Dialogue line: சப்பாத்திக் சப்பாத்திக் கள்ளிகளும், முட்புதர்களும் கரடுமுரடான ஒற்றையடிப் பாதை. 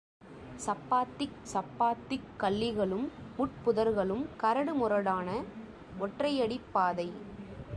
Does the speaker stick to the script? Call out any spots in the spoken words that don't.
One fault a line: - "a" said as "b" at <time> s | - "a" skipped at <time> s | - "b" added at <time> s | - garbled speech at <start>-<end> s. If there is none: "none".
none